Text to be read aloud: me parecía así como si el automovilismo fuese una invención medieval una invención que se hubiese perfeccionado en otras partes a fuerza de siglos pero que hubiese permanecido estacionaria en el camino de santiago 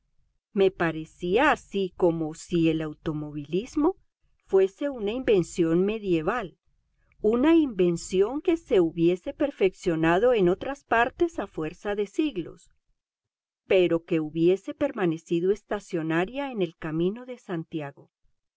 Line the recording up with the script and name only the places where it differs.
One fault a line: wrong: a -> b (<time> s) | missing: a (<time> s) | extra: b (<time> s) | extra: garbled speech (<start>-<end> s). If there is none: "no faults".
no faults